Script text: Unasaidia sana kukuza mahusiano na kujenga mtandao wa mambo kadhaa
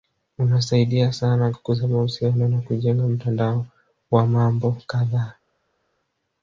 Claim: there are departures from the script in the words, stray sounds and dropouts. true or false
false